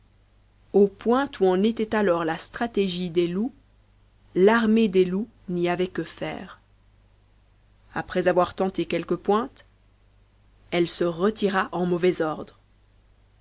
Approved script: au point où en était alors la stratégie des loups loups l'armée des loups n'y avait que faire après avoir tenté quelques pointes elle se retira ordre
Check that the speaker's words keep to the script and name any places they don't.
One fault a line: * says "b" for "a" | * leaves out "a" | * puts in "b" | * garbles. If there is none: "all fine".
* leaves out "loups"
* puts in "en mauvais"